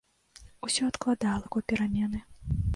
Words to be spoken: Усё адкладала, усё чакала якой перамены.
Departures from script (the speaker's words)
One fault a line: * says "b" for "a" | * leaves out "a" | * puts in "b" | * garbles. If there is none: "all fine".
* leaves out "усё чакала"